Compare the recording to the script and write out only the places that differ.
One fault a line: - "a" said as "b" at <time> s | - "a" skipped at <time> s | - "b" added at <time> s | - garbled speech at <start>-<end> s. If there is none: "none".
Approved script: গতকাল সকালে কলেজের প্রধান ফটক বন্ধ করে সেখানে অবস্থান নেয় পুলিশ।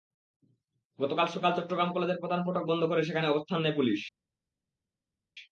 - "চট্টগ্রাম" added at 1.6 s